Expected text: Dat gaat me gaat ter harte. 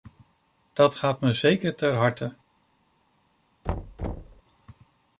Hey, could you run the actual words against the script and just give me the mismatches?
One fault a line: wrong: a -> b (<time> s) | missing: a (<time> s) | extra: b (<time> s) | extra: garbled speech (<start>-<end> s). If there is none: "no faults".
wrong: gaat -> zeker (1.3 s)